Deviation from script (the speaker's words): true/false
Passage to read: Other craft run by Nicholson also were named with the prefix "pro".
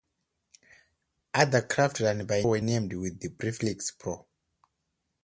true